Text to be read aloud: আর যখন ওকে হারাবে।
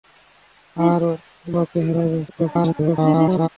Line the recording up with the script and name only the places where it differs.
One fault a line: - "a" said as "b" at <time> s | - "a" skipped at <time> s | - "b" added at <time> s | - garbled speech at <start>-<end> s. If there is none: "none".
- "যখন" skipped at 1.0 s
- garbled speech at 2.3-3.5 s